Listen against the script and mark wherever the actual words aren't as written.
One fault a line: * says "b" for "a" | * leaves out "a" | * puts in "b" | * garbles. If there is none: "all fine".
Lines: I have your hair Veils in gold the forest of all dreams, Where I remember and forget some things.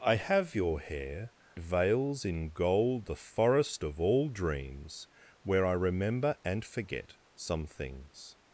all fine